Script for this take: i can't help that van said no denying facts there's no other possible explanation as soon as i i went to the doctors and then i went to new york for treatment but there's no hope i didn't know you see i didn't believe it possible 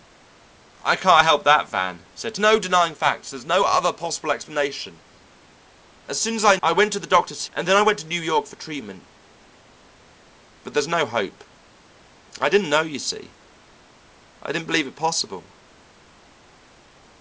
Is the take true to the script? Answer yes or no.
yes